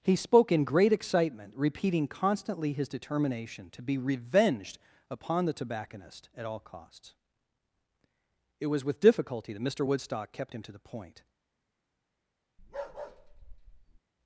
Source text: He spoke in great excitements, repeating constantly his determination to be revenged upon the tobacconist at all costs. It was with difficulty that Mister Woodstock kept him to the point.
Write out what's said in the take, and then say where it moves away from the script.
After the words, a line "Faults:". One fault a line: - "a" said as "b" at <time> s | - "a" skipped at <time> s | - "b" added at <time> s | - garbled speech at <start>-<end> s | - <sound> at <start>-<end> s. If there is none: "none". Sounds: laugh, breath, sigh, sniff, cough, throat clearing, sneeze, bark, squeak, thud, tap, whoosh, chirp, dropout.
He spoke in great excitement, repeating constantly his determination to be revenged upon the tobacconist at all costs. It was with difficulty that Mister Woodstock kept him to the point.
Faults:
- "excitements" said as "excitement" at 0.9 s
- bark at 12.6-14.0 s